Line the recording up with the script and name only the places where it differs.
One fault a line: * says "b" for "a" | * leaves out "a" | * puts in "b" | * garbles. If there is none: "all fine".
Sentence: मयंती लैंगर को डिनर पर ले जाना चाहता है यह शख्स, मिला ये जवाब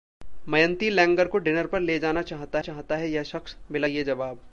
* puts in "चाहता"